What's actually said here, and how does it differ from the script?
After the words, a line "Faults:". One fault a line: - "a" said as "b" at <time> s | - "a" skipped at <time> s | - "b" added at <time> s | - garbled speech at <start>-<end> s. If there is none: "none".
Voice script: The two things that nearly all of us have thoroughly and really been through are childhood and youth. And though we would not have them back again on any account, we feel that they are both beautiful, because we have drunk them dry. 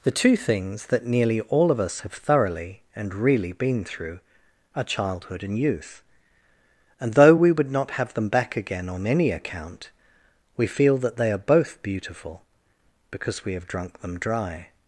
The two things that nearly all of us have thoroughly and really been through are childhood and youth. And though we would not have them back again on any account, we feel that they are both beautiful, because we have drunk them dry.
Faults:
none